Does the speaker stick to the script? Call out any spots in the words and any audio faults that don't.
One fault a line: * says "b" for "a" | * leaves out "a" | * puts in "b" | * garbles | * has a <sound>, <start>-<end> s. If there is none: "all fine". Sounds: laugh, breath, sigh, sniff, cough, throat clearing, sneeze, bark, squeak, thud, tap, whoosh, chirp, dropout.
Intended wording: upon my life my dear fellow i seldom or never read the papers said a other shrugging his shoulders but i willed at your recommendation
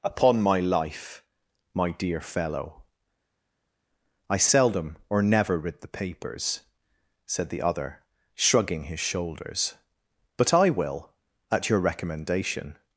* says "the" for "a"
* says "will" for "willed"